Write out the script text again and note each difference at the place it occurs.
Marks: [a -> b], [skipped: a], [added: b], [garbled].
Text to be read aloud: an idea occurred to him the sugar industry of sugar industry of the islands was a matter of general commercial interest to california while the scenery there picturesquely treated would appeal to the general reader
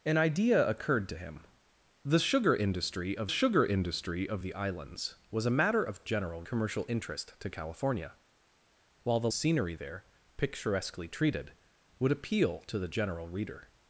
an idea occurred to him the sugar industry of sugar industry of the islands was a matter of general commercial interest to california while the scenery there picturesquely treated would appeal to the general reader